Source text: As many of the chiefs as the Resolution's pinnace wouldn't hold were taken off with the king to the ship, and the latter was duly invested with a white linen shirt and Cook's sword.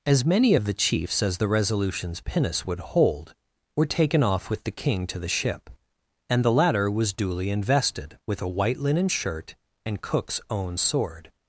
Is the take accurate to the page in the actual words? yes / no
no